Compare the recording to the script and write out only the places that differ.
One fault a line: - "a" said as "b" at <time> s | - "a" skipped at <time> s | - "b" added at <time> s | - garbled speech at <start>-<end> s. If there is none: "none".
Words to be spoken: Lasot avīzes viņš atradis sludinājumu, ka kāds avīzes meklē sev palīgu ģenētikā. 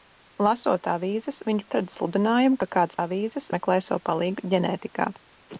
none